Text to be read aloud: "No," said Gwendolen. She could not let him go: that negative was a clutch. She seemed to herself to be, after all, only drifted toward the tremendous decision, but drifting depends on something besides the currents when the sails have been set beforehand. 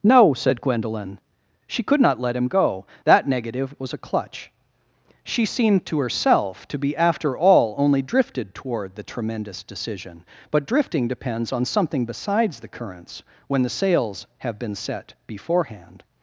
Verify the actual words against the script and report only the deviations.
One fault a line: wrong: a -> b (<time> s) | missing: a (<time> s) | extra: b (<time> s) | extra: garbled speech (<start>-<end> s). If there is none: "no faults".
no faults